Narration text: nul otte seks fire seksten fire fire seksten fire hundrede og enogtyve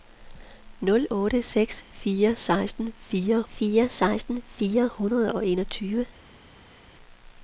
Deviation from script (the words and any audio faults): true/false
false